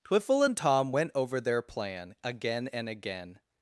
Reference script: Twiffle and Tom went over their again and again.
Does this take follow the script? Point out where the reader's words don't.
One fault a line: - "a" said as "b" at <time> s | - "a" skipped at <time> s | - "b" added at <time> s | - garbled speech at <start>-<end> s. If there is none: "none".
- "plan" added at 1.6 s